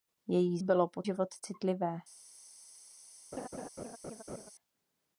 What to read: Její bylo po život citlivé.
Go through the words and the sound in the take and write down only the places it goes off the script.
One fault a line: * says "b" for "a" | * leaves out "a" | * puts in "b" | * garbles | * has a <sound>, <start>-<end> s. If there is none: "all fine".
* has a laugh, 3.3-4.5 s